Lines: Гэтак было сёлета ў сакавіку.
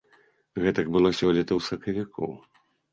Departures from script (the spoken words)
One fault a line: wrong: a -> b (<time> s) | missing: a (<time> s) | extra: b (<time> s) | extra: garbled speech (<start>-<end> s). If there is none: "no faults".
no faults